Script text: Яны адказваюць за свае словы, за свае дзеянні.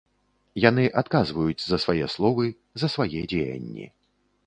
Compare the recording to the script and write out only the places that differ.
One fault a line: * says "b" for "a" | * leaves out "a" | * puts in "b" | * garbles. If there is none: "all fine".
all fine